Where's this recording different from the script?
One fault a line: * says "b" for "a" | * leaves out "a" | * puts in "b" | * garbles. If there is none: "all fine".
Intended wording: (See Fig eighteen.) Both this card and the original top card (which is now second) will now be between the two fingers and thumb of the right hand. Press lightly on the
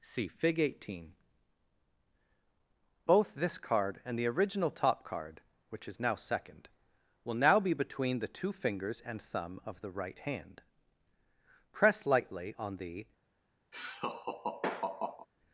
all fine